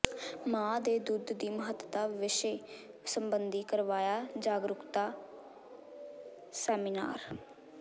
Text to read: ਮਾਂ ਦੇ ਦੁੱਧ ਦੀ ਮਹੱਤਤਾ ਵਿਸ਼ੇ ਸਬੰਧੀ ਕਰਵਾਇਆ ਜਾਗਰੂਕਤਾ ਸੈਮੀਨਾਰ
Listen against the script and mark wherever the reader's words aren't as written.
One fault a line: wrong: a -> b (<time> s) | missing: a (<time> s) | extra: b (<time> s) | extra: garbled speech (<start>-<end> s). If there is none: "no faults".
no faults